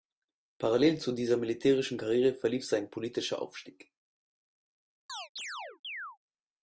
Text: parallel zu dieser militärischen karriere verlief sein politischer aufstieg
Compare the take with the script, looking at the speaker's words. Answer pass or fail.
pass